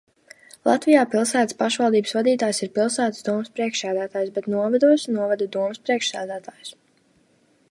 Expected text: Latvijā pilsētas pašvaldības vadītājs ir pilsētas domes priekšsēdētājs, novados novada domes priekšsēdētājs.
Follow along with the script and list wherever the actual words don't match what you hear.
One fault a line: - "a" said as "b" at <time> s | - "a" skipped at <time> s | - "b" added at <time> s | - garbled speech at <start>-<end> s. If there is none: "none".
- "bet" added at 4.4 s